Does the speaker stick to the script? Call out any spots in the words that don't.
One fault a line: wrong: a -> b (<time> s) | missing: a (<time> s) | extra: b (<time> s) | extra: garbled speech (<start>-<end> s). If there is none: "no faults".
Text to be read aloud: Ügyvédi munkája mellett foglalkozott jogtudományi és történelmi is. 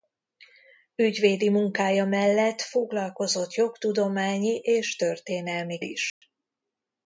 no faults